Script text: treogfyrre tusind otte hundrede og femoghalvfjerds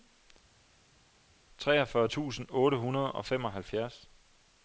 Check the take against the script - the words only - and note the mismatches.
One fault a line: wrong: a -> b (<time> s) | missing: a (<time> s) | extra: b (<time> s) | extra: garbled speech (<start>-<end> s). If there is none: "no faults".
no faults